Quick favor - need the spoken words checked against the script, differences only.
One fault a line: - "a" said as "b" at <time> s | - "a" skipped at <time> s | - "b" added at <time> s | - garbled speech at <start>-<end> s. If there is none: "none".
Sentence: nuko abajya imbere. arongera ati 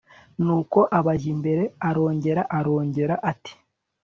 - "arongera" added at 2.6 s